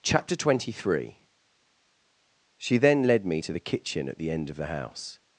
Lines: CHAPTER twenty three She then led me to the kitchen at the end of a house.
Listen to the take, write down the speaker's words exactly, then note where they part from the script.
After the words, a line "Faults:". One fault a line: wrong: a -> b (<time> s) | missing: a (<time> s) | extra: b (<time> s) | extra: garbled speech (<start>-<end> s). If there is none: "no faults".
CHAPTER twenty three She then led me to the kitchen at the end of the house.
Faults:
wrong: a -> the (4.6 s)